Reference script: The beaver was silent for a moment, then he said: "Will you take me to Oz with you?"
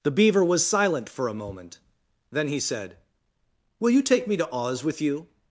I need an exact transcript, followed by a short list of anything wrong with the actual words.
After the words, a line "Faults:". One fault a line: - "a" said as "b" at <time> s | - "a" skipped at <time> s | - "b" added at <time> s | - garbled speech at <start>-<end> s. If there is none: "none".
The beaver was silent for a moment, then he said: "Will you take me to Oz with you?"
Faults:
none